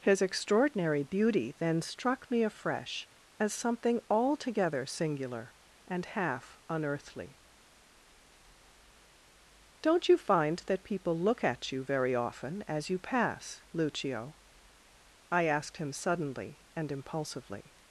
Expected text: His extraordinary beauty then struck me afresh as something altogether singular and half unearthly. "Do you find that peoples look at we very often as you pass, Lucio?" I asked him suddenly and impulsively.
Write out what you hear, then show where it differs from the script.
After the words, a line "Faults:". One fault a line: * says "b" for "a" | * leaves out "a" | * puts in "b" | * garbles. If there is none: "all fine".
His extraordinary beauty then struck me afresh as something altogether singular and half unearthly. "Don't you find that people look at you very often as you pass, Lucio?" I asked him suddenly and impulsively.
Faults:
* says "Don't" for "Do"
* says "people" for "peoples"
* says "you" for "we"